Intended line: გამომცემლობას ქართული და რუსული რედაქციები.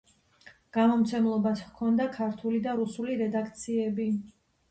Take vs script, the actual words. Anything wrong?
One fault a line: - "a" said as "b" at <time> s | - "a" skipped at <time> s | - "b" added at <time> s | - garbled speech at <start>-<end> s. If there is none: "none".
- "ჰქონდა" added at 1.6 s